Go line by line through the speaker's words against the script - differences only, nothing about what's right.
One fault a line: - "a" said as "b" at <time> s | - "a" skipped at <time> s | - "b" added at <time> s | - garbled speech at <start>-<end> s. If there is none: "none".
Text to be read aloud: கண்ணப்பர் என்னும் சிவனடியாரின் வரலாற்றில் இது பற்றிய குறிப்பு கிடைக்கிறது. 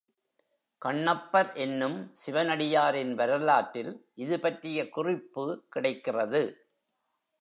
none